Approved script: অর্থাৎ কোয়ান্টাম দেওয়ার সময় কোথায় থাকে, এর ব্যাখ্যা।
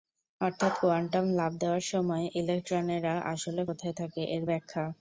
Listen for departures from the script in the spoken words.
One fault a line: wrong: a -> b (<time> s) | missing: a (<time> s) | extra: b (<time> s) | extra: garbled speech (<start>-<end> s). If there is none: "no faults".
extra: লাফ (1.3 s)
extra: ইলেকট্রনেরা আসলে (2.4 s)